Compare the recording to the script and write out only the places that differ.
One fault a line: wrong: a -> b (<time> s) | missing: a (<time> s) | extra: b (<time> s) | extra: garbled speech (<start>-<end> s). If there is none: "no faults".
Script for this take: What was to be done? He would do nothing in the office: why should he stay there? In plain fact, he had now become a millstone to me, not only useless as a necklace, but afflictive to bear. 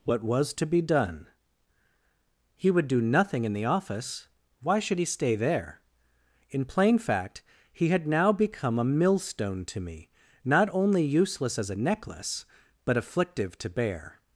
no faults